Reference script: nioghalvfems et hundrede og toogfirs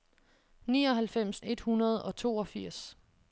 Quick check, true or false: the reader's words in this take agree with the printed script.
true